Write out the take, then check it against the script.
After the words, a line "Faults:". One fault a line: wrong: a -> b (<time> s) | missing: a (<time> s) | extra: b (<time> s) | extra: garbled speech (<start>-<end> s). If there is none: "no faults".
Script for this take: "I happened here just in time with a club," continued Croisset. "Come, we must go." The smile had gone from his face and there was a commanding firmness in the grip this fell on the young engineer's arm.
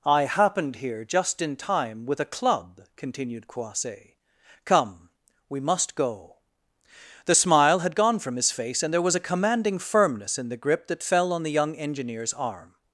"I happened here just in time with a club," continued Croisset. "Come, we must go." The smile had gone from his face and there was a commanding firmness in the grip that fell on the young engineer's arm.
Faults:
wrong: this -> that (10.9 s)